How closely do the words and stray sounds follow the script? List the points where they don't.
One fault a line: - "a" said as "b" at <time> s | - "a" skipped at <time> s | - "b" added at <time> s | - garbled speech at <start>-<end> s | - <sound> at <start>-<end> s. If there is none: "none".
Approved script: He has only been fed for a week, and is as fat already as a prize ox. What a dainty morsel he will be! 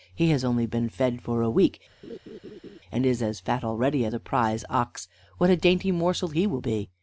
- laugh at 2.0-2.8 s